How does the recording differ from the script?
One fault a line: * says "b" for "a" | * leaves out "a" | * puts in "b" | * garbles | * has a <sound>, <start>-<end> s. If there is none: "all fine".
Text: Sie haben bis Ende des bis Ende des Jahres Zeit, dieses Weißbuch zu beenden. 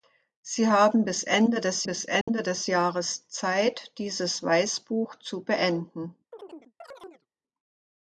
* has a dropout, 2.2-2.3 s
* has a chirp, 6.3-7.3 s